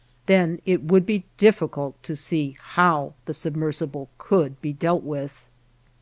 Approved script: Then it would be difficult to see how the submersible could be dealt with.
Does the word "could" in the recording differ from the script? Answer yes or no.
no